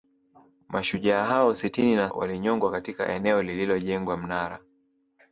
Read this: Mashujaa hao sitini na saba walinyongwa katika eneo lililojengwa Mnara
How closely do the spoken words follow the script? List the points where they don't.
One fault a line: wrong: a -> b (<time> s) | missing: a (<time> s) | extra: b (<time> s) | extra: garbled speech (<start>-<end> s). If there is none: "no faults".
missing: saba (2.1 s)